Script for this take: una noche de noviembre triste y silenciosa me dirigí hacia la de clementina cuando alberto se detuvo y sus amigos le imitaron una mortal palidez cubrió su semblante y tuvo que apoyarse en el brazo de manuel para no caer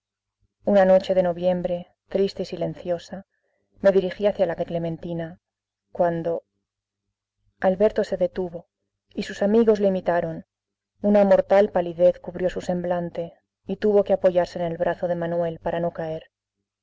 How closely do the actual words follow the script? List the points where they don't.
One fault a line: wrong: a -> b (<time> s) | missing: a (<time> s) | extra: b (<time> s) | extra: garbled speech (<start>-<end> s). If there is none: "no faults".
no faults